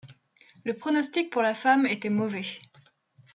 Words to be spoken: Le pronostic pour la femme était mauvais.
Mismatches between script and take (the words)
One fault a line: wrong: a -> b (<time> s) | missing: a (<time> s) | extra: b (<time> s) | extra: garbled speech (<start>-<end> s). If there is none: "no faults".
no faults